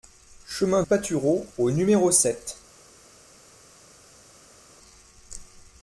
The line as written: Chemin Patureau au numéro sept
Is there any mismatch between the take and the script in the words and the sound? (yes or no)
no